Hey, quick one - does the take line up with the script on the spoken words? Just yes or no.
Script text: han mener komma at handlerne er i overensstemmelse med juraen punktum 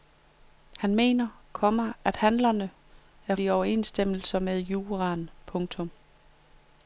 yes